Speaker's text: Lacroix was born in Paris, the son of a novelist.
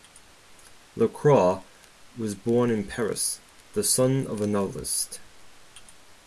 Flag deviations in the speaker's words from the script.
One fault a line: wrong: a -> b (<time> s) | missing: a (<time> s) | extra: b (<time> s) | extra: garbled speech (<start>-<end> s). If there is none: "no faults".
no faults